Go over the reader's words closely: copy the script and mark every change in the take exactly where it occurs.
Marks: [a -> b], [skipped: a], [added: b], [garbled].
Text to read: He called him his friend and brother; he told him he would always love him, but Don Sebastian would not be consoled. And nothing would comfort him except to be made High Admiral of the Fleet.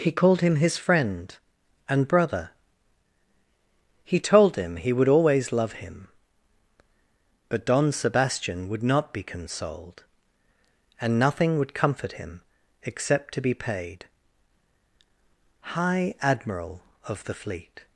He called him his friend and brother; he told him he would always love him, but Don Sebastian would not be consoled. And nothing would comfort him except to be [made -> paid] High Admiral of the Fleet.